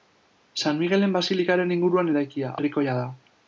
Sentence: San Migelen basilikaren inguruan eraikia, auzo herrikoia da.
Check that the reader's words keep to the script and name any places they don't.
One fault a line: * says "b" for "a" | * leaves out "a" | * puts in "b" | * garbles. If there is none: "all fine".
* leaves out "auzo"